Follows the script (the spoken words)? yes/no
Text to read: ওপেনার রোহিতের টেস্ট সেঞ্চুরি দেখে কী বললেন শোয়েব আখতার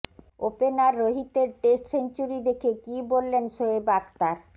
yes